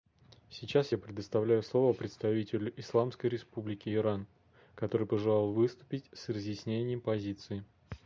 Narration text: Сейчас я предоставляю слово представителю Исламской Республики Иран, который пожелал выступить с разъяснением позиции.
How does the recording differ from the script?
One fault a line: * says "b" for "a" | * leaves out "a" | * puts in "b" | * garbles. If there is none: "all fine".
all fine